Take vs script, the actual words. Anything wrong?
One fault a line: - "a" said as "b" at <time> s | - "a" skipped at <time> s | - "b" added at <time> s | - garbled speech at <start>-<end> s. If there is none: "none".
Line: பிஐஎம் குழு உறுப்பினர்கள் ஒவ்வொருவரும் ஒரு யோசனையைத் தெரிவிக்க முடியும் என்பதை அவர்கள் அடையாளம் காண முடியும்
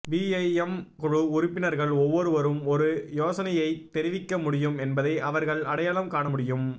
none